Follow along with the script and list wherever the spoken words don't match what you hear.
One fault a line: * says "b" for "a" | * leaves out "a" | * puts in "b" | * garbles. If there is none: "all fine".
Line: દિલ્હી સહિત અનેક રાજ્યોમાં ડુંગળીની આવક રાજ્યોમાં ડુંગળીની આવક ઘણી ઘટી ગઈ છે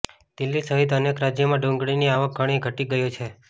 * leaves out "રાજ્યોમાં ડુંગળીની આવક"